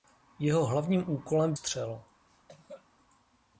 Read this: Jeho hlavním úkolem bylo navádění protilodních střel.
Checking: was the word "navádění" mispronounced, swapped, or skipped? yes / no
yes